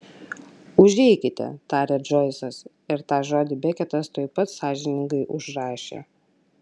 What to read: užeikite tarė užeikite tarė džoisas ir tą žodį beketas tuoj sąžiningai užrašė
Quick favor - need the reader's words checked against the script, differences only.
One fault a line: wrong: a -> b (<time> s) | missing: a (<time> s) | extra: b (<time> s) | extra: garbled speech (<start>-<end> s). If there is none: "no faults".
missing: užeikite tarė (2.0 s)
extra: pat (4.4 s)